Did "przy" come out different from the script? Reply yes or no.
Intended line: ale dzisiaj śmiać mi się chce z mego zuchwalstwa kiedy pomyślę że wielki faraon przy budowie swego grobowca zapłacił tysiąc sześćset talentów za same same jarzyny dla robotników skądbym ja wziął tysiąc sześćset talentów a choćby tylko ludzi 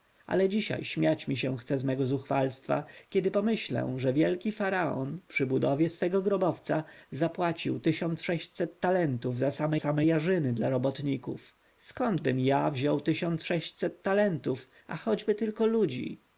no